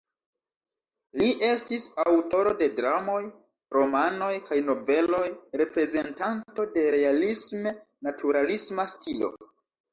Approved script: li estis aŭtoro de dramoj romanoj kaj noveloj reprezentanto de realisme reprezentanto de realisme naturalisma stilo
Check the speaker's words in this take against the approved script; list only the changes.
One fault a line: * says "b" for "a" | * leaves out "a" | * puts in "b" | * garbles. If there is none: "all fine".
* leaves out "reprezentanto de realisme"